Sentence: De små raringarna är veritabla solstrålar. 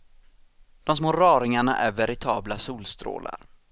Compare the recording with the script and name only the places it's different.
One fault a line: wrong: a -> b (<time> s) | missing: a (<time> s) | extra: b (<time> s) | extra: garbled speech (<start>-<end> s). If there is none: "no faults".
no faults